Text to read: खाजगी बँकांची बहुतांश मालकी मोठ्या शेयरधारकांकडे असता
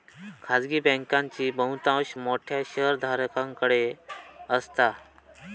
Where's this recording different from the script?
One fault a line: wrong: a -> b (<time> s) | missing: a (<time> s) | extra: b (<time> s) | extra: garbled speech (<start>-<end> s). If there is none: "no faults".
missing: मालकी (2.1 s)